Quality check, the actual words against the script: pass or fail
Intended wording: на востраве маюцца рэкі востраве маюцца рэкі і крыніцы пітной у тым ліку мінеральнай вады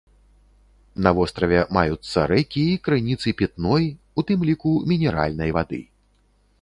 fail